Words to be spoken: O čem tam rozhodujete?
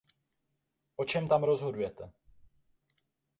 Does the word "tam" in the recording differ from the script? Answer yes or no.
no